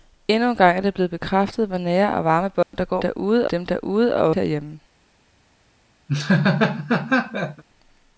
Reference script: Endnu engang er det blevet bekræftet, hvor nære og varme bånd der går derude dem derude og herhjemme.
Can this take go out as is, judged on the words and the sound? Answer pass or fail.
fail